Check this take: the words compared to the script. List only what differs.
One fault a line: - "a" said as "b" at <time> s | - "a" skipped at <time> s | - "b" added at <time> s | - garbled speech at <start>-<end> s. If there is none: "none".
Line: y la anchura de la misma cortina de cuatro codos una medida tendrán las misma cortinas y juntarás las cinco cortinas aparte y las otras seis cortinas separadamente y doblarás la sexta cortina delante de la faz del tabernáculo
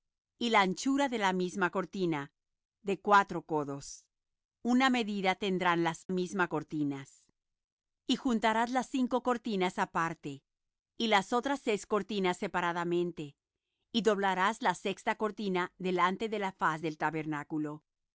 none